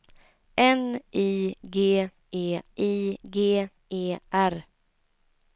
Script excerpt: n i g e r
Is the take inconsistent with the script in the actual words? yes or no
yes